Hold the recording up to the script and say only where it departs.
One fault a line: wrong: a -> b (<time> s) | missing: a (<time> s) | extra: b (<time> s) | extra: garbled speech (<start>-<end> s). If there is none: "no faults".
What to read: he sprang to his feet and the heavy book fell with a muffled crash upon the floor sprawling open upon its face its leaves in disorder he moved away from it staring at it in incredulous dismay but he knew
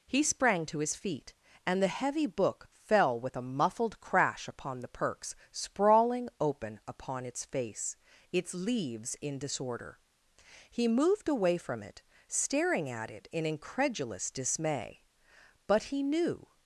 wrong: floor -> perks (4.9 s)